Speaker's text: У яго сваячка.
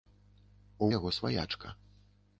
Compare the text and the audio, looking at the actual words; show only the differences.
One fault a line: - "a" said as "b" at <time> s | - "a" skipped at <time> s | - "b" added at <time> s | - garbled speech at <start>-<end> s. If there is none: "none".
none